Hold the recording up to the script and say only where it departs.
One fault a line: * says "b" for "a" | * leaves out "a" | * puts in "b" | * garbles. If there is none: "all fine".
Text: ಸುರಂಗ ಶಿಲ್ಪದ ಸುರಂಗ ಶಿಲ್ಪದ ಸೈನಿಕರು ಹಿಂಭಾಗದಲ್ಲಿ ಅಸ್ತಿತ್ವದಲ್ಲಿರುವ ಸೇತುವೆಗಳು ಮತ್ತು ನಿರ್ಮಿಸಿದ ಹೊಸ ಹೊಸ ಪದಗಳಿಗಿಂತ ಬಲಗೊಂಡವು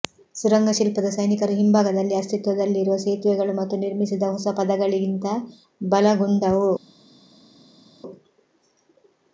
* leaves out "ಸುರಂಗ ಶಿಲ್ಪದ"
* leaves out "ಹೊಸ"